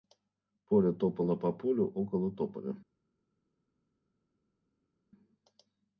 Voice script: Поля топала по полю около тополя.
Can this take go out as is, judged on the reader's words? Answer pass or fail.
pass